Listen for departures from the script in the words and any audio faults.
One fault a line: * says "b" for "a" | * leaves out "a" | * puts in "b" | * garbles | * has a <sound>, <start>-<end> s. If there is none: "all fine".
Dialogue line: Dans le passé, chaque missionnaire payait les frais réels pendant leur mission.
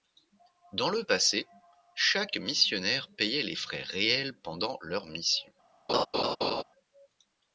* has a laugh, 5.9-6.6 s